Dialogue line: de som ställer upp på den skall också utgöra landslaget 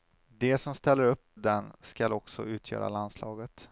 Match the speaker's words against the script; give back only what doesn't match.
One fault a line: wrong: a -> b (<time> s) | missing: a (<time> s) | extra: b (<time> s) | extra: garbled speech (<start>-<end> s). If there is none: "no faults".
missing: på (1.3 s)